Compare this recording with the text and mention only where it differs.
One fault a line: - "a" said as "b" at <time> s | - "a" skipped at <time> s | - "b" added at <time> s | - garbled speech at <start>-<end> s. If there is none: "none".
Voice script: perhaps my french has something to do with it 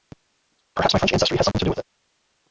- "ancestry" added at 1.1 s